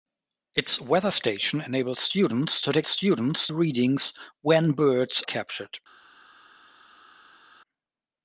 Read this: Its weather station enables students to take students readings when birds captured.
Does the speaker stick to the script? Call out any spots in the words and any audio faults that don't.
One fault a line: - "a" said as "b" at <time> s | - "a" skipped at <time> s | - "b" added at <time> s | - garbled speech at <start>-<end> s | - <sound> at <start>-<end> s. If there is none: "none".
none